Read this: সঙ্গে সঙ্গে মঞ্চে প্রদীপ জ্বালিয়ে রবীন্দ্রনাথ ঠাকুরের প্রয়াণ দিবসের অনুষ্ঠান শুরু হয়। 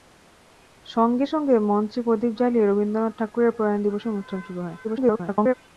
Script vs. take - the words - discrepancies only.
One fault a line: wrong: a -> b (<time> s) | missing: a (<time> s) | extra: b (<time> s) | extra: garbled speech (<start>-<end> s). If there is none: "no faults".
extra: garbled speech (4.8-5.5 s)